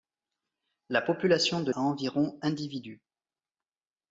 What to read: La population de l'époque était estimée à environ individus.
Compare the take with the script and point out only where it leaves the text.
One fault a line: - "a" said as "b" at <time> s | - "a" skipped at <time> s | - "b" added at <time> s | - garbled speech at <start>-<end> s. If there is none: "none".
- "l'époque était estimée" skipped at 1.7 s